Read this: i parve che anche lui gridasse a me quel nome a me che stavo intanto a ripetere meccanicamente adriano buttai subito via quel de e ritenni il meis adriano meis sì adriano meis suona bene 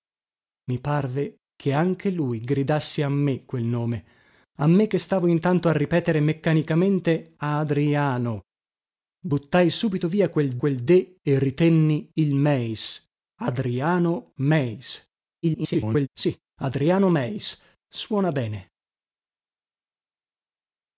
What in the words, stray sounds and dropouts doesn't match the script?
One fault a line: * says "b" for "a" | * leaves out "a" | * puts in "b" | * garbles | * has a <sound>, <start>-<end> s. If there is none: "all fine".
* puts in "quel"
* garbles